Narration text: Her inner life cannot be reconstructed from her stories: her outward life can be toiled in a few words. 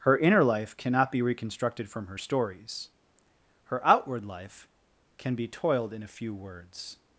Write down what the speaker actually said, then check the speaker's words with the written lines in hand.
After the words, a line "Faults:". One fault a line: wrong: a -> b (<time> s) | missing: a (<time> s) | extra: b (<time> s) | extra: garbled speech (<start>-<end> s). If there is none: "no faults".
Her inner life cannot be reconstructed from her stories: her outward life can be toiled in a few words.
Faults:
no faults